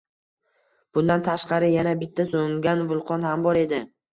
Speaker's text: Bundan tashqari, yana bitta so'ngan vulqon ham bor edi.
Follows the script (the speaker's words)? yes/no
yes